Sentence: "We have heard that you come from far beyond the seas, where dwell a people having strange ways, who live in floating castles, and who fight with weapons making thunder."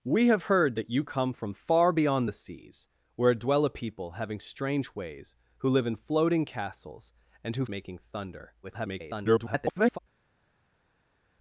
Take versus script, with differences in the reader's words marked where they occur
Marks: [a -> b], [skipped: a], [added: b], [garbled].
"We have heard that you come from far beyond the seas, where dwell a people having strange ways, who live in floating castles, and who [skipped: fight with weapons] making thunder." [garbled]